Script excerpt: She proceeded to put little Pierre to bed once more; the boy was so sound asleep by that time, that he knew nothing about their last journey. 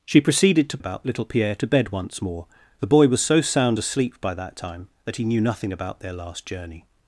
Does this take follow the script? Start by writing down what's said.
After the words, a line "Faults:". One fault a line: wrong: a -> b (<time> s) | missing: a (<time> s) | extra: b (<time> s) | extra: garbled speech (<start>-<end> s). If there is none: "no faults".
She proceeded to about little Pierre to bed once more; the boy was so sound asleep by that time, that he knew nothing about their last journey.
Faults:
wrong: put -> about (0.8 s)